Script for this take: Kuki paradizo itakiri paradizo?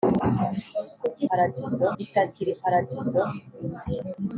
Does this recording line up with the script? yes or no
yes